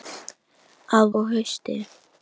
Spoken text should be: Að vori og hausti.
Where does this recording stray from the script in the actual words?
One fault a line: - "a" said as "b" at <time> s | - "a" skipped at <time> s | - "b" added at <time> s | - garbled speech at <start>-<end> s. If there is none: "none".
- "vori" skipped at 1.1 s